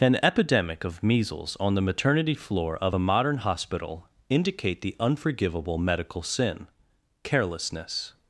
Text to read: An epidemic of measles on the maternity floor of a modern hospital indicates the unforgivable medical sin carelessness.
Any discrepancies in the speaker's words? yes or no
yes